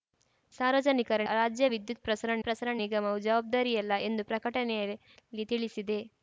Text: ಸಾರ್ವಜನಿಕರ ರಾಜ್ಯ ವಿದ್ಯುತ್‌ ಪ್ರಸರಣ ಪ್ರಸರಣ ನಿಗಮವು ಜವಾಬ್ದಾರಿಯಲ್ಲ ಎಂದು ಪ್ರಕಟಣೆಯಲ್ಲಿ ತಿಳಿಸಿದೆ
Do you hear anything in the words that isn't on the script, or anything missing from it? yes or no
no